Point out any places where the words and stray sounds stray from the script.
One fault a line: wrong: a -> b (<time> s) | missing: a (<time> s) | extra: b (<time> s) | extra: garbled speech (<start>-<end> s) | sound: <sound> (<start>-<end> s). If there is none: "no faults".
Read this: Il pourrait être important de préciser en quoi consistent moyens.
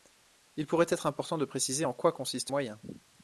no faults